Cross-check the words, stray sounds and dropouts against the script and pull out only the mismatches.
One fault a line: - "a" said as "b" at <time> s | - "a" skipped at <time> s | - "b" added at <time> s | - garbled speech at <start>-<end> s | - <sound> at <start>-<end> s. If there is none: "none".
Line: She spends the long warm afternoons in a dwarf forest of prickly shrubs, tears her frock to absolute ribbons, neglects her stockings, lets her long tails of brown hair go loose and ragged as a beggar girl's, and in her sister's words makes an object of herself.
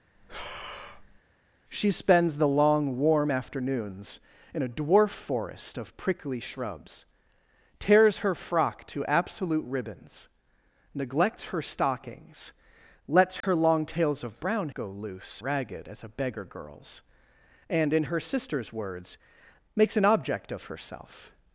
- breath at 0.2-1.2 s
- dropout at 13.4-13.4 s
- "hair" skipped at 14.7 s
- "and" skipped at 15.4 s